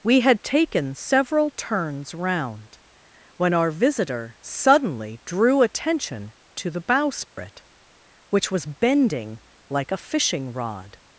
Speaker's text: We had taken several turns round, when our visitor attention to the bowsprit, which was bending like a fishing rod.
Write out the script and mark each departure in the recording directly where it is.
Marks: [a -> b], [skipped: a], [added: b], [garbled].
We had taken several turns round, when our visitor [added: suddenly drew] attention to the bowsprit, which was bending like a fishing rod.